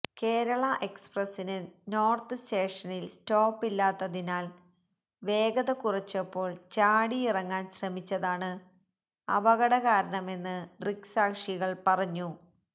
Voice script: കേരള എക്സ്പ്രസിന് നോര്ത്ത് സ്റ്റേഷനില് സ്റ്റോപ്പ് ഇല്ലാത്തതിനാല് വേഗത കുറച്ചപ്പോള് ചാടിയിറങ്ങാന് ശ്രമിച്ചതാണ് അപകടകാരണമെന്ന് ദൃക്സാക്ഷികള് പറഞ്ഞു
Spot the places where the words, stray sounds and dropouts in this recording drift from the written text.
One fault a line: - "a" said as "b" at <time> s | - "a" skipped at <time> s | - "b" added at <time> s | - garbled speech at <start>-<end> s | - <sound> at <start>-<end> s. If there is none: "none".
none